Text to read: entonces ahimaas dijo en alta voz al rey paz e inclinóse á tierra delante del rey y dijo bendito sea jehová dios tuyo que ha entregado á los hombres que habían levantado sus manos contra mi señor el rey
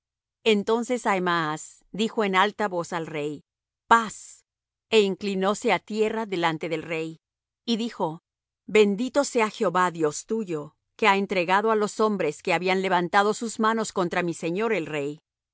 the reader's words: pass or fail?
pass